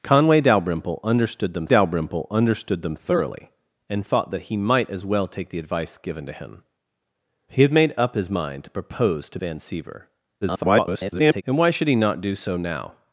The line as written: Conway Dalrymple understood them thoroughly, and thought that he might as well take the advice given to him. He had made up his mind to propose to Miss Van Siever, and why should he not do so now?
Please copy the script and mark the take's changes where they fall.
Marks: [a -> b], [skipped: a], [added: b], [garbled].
Conway Dalrymple understood them [added: Dalrymple understood them] thoroughly, and thought that he might as well take the advice given to him. He had made up his mind to propose to [skipped: Miss] Van Siever, [garbled] and why should he not do so now?